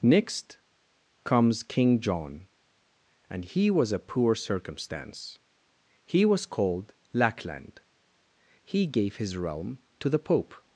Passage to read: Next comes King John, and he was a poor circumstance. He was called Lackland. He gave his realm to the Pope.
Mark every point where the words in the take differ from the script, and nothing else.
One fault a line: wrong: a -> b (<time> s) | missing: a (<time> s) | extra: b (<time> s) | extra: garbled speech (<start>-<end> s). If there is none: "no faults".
no faults